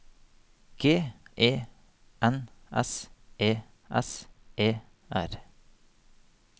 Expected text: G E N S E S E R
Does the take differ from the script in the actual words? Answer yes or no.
no